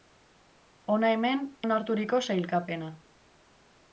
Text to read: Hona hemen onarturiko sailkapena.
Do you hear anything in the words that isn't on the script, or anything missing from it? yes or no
no